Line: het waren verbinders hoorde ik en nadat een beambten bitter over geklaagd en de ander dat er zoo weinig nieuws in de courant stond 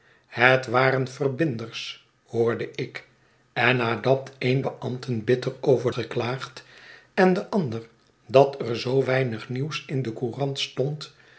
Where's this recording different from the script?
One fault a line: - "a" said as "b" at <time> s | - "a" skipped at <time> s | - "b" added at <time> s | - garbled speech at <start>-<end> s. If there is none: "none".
none